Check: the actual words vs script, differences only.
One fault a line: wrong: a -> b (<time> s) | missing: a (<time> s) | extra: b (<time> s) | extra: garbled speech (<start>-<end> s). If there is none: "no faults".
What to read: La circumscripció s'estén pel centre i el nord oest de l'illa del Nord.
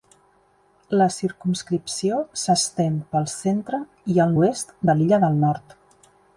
missing: nord (4.3 s)